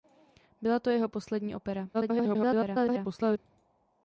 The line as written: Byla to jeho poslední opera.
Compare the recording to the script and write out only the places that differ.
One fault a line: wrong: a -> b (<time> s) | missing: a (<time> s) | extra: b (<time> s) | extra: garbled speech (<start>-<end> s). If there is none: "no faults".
extra: garbled speech (1.9-3.4 s)